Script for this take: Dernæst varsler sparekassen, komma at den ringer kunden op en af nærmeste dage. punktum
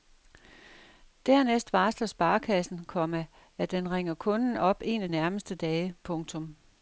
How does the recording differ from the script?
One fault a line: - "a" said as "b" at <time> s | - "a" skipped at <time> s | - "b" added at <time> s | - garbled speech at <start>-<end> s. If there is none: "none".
none